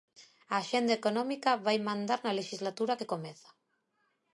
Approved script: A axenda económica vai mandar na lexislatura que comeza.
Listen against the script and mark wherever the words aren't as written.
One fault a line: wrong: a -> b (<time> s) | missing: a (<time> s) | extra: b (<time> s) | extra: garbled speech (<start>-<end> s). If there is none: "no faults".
no faults